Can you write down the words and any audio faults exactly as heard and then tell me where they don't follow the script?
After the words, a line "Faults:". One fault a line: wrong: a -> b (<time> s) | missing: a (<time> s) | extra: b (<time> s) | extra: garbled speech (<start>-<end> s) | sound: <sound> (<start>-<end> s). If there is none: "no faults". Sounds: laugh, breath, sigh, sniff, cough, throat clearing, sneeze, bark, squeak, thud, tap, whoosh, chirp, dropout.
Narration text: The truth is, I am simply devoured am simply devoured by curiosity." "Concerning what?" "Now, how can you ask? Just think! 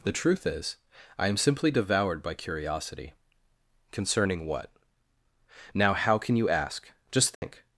The truth is, I am simply devoured by curiosity." "Concerning what?" "Now, how can you ask? Just think!
Faults:
missing: am simply devoured (2.2 s)
sound: dropout (7.4-7.4 s)